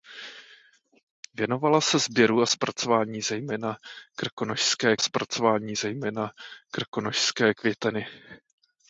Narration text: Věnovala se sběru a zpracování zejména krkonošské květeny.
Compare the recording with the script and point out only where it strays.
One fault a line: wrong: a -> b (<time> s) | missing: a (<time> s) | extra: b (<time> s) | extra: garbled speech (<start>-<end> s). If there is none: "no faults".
extra: zpracování zejména krkonošské (5.0 s)